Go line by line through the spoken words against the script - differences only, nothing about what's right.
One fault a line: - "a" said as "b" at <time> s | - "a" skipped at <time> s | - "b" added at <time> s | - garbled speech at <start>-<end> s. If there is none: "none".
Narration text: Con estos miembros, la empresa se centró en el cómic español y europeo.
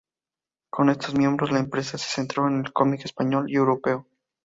none